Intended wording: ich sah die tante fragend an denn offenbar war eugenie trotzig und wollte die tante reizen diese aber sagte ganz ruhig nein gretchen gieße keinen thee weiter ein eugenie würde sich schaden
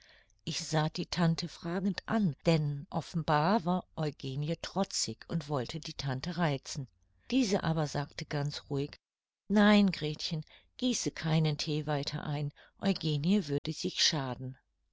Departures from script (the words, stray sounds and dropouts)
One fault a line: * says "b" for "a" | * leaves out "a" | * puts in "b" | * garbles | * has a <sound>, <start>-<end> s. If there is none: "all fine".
* has a dropout, 13.6-13.6 s